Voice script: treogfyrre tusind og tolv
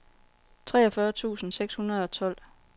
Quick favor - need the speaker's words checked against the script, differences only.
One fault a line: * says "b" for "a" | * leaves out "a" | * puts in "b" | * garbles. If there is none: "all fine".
* puts in "seks hundrede"